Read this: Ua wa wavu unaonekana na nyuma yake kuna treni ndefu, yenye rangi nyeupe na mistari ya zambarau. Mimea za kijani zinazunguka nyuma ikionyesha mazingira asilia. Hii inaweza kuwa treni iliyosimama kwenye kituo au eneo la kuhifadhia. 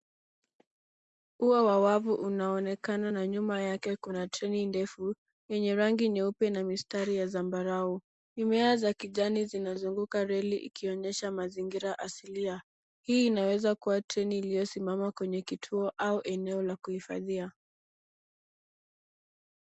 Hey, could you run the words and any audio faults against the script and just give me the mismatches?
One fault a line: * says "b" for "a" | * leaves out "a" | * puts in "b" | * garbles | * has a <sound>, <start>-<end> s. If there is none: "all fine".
* says "reli" for "nyuma"